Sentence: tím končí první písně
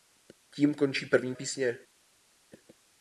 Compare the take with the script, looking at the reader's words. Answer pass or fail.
pass